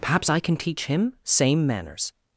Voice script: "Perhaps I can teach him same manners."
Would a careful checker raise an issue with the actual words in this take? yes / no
no